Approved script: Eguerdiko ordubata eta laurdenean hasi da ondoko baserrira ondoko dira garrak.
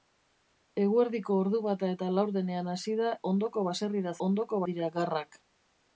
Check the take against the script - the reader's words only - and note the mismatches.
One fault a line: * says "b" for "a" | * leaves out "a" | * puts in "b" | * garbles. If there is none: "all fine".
all fine